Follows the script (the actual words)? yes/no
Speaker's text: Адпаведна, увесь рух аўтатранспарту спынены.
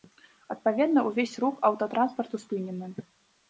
yes